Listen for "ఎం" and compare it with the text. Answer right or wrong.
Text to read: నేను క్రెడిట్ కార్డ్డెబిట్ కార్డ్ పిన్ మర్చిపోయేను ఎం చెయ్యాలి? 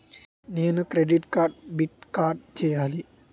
wrong